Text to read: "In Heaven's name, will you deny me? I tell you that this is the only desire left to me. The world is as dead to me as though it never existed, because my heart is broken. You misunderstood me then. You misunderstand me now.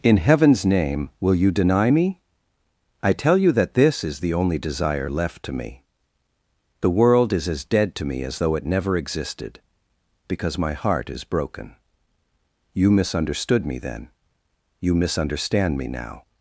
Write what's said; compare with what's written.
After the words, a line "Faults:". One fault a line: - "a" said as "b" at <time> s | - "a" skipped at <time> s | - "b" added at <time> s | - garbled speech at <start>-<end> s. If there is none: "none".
"In Heaven's name, will you deny me? I tell you that this is the only desire left to me. The world is as dead to me as though it never existed, because my heart is broken. You misunderstood me then. You misunderstand me now.
Faults:
none